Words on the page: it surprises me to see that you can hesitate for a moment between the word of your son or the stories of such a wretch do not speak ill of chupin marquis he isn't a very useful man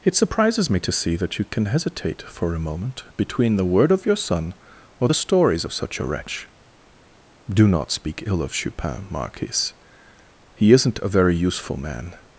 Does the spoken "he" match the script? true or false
true